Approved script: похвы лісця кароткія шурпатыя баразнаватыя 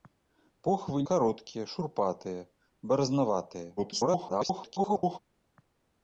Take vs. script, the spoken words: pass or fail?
fail